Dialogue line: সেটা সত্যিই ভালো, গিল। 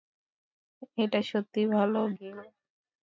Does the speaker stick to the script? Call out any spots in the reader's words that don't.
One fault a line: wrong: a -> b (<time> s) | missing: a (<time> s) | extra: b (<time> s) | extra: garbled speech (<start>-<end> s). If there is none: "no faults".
wrong: সেটা -> এটা (1.0 s)